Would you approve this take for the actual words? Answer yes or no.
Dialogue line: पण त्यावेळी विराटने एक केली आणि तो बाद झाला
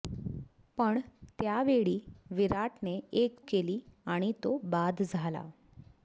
yes